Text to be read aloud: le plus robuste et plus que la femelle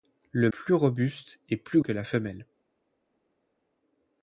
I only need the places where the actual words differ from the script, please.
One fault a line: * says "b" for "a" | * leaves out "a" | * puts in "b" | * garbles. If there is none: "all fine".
all fine